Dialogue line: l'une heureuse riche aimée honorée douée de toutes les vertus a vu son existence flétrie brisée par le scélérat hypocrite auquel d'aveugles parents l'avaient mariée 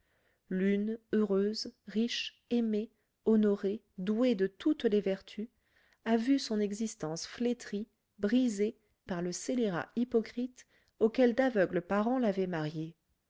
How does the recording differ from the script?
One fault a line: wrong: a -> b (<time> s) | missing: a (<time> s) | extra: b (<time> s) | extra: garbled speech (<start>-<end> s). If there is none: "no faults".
no faults